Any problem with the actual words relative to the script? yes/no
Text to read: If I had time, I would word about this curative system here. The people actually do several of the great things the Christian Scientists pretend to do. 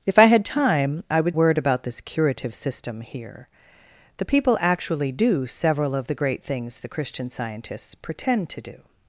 no